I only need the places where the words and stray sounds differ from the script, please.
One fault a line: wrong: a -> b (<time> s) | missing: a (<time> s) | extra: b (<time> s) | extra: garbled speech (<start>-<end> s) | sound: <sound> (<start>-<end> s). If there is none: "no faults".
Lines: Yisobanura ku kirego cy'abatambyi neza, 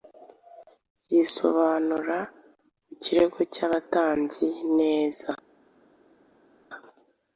no faults